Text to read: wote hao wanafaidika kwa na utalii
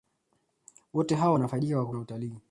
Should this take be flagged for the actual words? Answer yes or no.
no